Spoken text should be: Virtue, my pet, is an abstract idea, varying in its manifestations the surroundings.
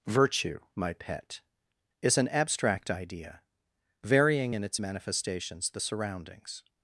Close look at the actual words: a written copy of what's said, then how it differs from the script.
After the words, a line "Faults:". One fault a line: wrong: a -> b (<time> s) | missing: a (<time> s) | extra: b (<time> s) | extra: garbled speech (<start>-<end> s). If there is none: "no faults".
Virtue, my pet, is an abstract idea, varying in its manifestations the surroundings.
Faults:
no faults